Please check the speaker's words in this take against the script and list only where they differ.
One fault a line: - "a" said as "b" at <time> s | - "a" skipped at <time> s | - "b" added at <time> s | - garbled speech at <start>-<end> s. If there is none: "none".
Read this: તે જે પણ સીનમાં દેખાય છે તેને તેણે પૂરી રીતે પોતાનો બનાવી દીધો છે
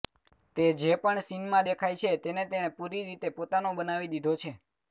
none